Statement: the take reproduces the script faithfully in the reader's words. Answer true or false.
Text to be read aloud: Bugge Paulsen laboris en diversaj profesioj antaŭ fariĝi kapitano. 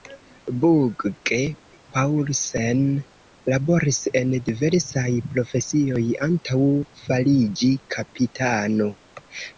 true